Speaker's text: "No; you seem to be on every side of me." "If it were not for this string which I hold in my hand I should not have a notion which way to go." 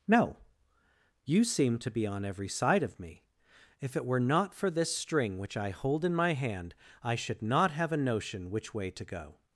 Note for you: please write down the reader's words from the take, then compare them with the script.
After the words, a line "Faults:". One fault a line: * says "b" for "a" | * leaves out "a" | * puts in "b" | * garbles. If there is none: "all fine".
"No; you seem to be on every side of me." "If it were not for this string which I hold in my hand I should not have a notion which way to go."
Faults:
all fine